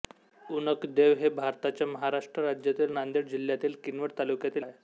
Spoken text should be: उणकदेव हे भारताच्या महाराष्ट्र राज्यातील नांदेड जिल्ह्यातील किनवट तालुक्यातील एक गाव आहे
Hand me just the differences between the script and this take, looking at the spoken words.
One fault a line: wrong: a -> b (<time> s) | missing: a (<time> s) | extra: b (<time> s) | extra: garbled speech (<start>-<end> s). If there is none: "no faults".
missing: एक गाव (4.6 s)